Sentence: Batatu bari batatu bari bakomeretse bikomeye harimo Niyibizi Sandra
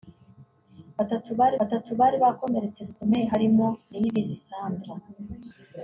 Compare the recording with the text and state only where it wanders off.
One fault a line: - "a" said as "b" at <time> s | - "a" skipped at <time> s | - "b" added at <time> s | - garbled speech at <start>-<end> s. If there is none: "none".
none